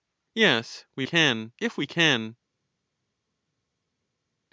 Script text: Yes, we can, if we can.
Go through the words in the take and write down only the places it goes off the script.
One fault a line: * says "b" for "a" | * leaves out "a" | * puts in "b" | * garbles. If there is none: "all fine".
all fine